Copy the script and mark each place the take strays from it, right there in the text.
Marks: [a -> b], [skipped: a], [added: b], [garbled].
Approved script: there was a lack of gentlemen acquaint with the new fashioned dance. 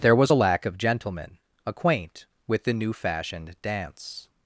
there was a lack of gentlemen acquaint with the new fashioned dance.